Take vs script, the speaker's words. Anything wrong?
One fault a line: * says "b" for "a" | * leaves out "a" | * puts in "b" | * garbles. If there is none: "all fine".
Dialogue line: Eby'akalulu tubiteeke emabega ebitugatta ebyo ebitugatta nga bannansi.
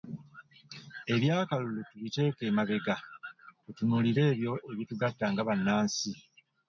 * says "tutunuulire" for "ebitugatta"